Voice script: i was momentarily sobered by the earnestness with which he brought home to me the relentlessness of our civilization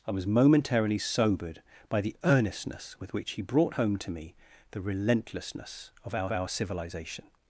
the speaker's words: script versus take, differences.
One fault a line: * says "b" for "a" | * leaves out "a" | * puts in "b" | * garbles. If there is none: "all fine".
* puts in "our"